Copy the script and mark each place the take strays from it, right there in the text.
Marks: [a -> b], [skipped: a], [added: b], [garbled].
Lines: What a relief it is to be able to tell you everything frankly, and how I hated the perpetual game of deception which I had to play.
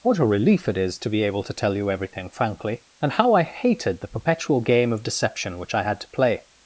What a relief it is to be able to tell you everything frankly, and how I hated the perpetual game of deception which I had to play.